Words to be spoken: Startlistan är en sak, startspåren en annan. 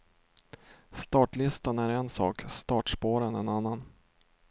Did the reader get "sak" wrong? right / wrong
right